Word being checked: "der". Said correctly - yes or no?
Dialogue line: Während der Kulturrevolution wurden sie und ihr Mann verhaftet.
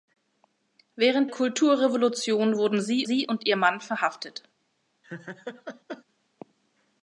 no